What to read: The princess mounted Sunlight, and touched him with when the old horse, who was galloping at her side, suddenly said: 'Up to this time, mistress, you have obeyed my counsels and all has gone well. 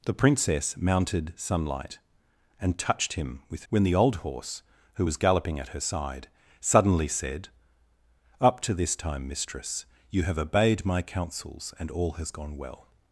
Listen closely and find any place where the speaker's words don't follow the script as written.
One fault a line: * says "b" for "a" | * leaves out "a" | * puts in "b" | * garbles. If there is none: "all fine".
all fine